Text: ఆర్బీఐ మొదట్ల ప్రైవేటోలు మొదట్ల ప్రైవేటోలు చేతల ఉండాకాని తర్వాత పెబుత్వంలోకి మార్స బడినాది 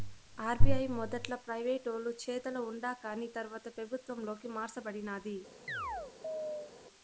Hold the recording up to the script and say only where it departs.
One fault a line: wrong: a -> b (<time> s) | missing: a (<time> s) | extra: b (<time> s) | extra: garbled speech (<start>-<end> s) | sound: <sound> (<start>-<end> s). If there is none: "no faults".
missing: మొదట్ల ప్రైవేటోలు (2.1 s)
sound: chirp (5.7-6.7 s)